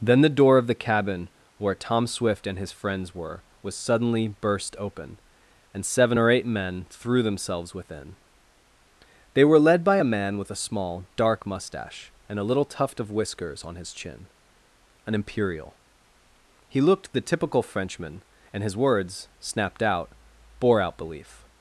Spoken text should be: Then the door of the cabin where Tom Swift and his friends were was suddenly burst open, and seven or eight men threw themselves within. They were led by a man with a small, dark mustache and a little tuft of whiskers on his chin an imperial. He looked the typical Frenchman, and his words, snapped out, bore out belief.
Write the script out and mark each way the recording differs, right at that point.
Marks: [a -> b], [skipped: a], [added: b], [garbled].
Then the door of the cabin where Tom Swift and his friends were was suddenly burst open, and seven or eight men threw themselves within. They were led by a man with a small, dark mustache and a little tuft of whiskers on his chin an imperial. He looked the typical Frenchman, and his words, snapped out, bore out belief.